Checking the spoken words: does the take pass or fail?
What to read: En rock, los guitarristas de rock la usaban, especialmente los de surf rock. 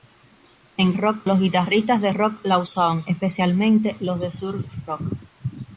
pass